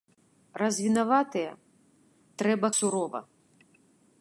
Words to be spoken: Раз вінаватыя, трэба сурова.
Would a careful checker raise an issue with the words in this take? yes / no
no